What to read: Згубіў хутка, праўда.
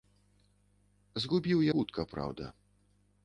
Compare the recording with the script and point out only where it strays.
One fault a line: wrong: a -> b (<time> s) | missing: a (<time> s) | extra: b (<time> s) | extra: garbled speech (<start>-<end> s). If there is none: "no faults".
no faults